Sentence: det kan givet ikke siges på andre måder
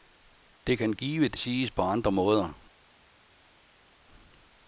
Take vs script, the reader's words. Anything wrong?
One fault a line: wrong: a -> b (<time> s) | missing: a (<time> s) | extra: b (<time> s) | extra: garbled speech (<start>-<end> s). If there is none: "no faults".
missing: ikke (1.4 s)